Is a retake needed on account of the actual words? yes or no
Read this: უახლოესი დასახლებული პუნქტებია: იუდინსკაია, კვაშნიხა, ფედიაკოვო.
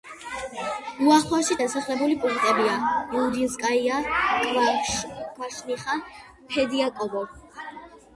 no